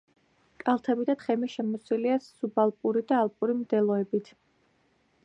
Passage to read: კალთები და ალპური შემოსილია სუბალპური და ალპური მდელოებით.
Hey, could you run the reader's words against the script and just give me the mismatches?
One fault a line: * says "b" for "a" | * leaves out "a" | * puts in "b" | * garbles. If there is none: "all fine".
* says "თხემი" for "ალპური"